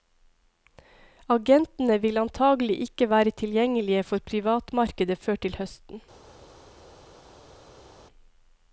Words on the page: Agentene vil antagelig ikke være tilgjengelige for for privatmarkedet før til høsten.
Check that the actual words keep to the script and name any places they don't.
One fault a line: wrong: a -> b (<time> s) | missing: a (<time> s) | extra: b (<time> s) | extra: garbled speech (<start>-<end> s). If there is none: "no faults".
missing: for (4.2 s)